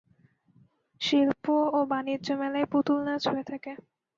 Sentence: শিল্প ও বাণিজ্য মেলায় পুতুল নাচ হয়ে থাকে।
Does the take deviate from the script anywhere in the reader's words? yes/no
no